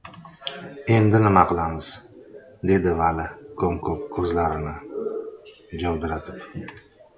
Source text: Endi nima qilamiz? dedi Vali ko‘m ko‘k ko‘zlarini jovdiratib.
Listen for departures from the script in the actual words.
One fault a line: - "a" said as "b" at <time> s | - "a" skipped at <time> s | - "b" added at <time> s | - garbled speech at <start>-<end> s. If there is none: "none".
none